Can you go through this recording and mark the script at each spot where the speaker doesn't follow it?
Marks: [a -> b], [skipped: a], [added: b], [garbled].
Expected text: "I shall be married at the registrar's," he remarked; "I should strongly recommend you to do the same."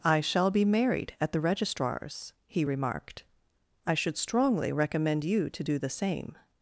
"I shall be married at the registrar's," he remarked; "I should strongly recommend you to do the same."